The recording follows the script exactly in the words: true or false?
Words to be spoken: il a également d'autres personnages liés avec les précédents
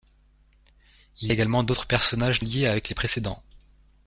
true